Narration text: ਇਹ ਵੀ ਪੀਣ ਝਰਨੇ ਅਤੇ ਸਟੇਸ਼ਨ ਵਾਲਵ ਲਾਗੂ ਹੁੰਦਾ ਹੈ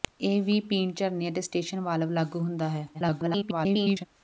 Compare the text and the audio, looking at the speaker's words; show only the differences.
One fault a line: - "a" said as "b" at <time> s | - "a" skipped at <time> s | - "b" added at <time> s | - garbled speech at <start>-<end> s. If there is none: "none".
- garbled speech at 2.9-4.1 s